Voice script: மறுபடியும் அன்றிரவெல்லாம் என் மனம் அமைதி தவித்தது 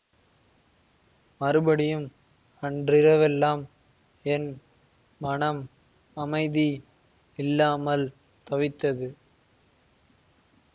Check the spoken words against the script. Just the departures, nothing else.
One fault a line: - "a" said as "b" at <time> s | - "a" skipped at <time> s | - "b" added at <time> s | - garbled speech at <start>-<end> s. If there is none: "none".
- "இல்லாமல்" added at 7.4 s